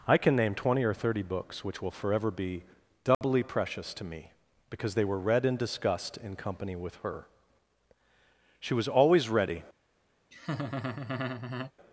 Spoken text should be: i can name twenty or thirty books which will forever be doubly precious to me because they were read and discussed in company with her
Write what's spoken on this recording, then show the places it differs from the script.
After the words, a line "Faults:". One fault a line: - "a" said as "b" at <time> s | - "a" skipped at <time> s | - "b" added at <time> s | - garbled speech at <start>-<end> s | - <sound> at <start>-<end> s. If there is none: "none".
i can name twenty or thirty books which will forever be doubly precious to me because they were read and discussed in company with her she was always ready
Faults:
- dropout at 3.1-3.2 s
- "she was always ready" added at 8.6 s
- laugh at 10.3-11.7 s